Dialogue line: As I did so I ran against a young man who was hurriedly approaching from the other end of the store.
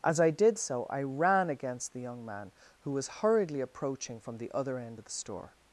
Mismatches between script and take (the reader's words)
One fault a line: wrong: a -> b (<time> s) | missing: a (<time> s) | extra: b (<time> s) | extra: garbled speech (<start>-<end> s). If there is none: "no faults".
wrong: a -> the (1.9 s)